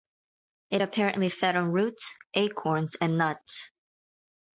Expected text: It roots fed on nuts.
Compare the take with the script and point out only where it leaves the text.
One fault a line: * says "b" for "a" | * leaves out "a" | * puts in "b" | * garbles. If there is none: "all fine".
* says "apparently" for "roots"
* puts in "roots acorns and"